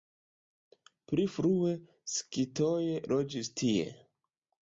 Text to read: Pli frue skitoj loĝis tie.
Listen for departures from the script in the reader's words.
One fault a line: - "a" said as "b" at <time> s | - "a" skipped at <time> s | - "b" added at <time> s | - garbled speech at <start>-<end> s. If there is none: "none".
none